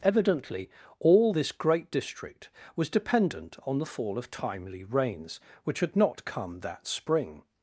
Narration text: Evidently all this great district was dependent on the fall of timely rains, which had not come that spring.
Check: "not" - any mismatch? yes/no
no